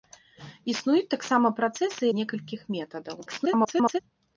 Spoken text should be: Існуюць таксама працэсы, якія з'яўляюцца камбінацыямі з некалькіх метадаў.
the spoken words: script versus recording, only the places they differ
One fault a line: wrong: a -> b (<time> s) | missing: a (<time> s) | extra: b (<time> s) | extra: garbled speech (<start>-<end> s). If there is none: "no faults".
missing: якія з'яўляюцца камбінацыямі (2.0 s)
extra: garbled speech (3.3-4.0 s)